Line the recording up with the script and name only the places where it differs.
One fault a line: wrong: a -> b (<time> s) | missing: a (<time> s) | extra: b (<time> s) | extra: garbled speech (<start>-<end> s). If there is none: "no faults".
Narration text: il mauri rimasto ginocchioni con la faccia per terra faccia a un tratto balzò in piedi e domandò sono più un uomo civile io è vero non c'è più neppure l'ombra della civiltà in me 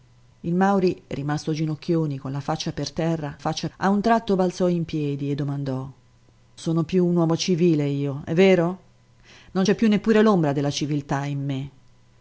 no faults